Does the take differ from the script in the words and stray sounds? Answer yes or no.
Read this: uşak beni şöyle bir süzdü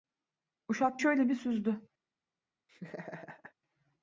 yes